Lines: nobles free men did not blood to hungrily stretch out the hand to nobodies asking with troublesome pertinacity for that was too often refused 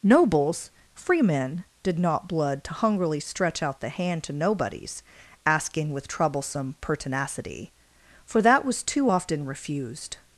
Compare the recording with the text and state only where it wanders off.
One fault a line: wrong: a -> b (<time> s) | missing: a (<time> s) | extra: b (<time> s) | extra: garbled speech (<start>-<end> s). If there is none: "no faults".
no faults